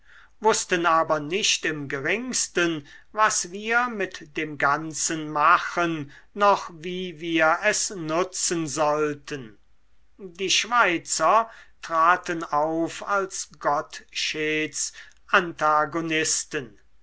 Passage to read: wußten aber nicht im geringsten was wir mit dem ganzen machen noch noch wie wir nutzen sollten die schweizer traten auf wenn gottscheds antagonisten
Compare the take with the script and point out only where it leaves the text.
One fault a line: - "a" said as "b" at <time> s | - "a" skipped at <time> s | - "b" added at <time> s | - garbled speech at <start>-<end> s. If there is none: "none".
- "noch" skipped at 6.7 s
- "es" added at 7.7 s
- "wenn" said as "als" at 13.1 s